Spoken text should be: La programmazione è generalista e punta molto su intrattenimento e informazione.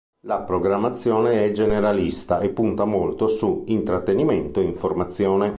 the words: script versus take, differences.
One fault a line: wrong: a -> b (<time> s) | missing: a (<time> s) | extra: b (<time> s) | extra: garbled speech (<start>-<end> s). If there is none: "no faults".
no faults